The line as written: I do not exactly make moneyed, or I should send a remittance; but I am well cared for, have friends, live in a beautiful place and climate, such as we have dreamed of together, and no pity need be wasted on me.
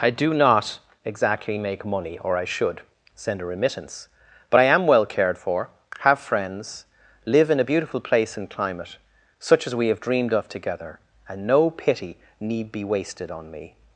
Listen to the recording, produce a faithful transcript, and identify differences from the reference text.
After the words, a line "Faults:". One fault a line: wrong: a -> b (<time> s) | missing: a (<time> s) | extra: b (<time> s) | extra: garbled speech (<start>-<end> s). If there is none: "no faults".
I do not exactly make money, or I should send a remittance; but I am well cared for, have friends, live in a beautiful place and climate, such as we have dreamed of together, and no pity need be wasted on me.
Faults:
wrong: moneyed -> money (1.9 s)